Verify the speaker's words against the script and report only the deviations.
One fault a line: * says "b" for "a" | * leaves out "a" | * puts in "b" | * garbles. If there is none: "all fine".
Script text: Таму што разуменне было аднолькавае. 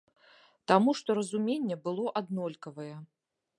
all fine